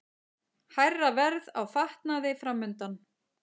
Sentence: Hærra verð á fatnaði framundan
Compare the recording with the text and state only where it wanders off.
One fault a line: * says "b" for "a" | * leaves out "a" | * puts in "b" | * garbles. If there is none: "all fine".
all fine